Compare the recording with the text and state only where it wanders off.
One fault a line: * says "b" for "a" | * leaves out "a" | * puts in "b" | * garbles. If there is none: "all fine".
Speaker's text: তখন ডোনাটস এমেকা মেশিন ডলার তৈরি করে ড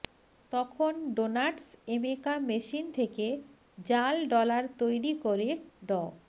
* puts in "থেকে জাল"